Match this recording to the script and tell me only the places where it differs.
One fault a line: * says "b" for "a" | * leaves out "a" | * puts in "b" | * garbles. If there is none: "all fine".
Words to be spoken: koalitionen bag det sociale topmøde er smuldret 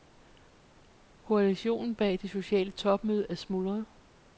all fine